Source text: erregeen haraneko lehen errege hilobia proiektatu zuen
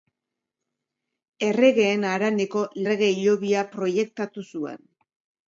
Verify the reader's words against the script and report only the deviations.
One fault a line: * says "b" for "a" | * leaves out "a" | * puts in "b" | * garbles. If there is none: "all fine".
* leaves out "lehen"